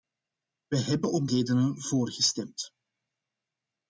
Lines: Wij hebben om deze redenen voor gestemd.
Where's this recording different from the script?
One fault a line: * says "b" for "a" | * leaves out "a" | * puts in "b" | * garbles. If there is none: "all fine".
* leaves out "deze"